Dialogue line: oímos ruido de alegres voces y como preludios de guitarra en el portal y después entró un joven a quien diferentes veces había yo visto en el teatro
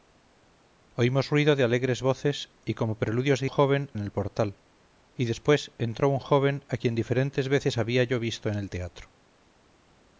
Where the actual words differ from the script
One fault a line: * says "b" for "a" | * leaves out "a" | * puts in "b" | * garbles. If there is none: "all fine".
* says "joven" for "guitarra"